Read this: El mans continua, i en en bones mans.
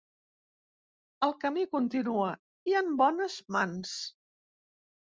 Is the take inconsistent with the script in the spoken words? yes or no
yes